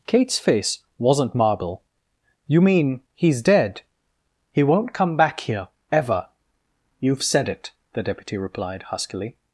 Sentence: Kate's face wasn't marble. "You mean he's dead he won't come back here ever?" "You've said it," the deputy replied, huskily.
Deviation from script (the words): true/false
false